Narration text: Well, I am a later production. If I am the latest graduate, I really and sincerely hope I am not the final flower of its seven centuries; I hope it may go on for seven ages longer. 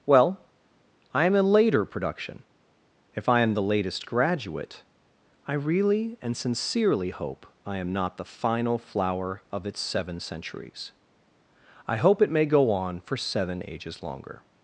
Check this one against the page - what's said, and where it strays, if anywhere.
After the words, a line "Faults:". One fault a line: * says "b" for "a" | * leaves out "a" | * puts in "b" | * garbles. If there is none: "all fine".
Well, I am a later production. If I am the latest graduate, I really and sincerely hope I am not the final flower of its seven centuries; I hope it may go on for seven ages longer.
Faults:
all fine